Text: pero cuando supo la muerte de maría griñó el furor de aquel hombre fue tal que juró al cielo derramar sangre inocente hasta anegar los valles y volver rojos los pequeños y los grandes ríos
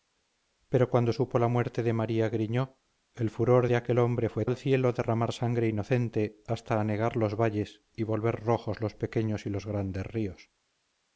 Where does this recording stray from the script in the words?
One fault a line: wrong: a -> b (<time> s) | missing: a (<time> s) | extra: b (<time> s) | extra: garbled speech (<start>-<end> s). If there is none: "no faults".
missing: tal que juró (4.5 s)